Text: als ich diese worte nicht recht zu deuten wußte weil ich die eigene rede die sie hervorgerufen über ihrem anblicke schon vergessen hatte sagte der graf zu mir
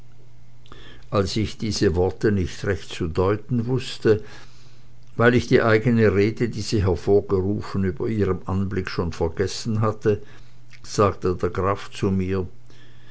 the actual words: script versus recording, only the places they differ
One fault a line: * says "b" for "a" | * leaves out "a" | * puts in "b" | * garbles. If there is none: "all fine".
all fine